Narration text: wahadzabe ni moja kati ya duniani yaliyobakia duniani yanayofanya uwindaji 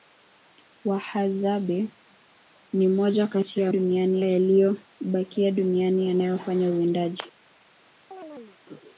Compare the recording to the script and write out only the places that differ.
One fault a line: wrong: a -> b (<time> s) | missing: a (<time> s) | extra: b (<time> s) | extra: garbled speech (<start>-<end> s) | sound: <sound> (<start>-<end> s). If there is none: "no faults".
sound: chirp (8.1-8.6 s)